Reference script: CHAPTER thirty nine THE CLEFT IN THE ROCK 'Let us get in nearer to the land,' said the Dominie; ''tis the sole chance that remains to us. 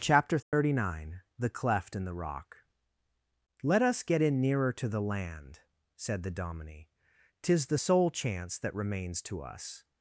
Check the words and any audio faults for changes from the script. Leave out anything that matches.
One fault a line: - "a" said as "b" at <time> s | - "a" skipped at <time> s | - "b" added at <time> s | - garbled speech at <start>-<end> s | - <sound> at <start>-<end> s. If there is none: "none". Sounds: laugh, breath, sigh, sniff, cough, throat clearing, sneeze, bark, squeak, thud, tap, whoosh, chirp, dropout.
- dropout at 0.4-0.5 s